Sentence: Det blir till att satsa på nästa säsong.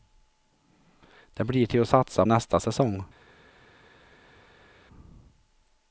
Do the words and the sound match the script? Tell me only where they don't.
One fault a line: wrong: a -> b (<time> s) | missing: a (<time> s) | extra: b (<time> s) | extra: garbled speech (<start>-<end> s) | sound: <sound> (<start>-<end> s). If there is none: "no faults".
missing: på (2.2 s)